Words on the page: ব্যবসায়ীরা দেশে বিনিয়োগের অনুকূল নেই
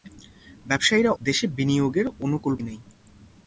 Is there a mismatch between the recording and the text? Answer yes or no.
no